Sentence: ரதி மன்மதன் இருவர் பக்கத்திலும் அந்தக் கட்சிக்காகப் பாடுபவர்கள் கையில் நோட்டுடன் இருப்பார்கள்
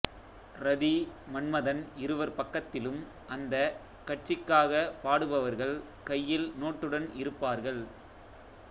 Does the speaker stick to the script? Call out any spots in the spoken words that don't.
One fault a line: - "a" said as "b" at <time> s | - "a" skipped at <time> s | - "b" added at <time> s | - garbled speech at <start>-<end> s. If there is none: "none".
none